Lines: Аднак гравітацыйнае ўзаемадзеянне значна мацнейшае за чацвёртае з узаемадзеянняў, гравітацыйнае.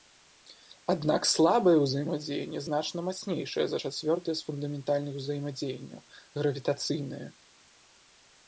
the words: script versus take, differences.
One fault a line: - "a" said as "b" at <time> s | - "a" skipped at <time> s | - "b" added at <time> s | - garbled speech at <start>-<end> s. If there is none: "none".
- "гравітацыйнае" said as "слабае" at 1.3 s
- "фундаментальных" added at 4.5 s